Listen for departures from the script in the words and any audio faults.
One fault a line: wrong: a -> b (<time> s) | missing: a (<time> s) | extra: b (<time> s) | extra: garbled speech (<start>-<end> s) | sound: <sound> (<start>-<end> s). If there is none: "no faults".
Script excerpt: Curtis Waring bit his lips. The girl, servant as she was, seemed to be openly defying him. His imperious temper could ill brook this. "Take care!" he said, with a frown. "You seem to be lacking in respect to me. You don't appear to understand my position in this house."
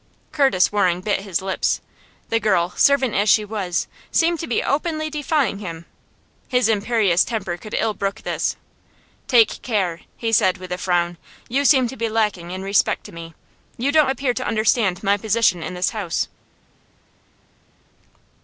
no faults